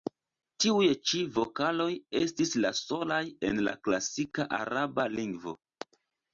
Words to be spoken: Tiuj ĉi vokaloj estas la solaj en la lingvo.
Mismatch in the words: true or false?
true